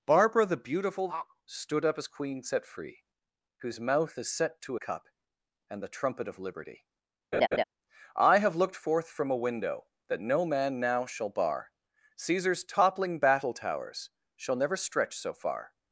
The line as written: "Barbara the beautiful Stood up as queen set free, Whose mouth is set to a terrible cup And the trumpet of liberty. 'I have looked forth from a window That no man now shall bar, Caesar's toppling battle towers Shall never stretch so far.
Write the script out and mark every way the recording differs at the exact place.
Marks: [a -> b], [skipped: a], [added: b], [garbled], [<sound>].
"Barbara the beautiful Stood up as queen set free, Whose mouth is set to [skipped: a terrible] cup And the trumpet of liberty. [laugh] 'I have looked forth from a window That no man now shall bar, Caesar's toppling battle towers Shall never stretch so far.